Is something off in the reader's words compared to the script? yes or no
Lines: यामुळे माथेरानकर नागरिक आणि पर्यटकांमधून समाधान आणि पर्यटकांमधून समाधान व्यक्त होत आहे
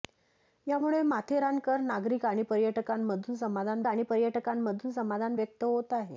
no